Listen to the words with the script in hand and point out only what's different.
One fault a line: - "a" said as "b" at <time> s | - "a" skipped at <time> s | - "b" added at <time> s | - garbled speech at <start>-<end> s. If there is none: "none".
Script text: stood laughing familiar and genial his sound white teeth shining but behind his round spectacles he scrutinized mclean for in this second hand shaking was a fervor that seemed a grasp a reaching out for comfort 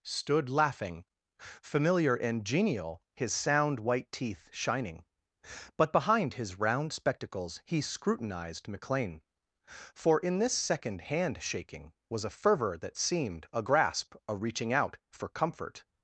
none